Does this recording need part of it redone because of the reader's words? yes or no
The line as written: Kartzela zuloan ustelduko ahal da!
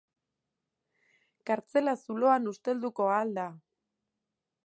no